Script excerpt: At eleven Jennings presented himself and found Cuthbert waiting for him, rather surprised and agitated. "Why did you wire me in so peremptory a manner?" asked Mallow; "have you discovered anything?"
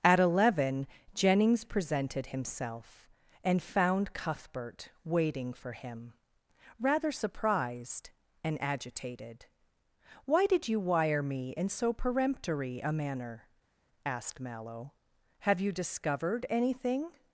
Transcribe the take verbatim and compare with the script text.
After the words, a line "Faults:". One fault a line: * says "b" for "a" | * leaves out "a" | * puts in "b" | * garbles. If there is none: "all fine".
At eleven Jennings presented himself and found Cuthbert waiting for him, rather surprised and agitated. "Why did you wire me in so peremptory a manner?" asked Mallow; "have you discovered anything?"
Faults:
all fine